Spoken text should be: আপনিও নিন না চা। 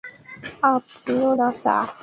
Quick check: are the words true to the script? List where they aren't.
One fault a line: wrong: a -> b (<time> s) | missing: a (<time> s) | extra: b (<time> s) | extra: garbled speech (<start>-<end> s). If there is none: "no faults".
missing: নিন (1.3 s)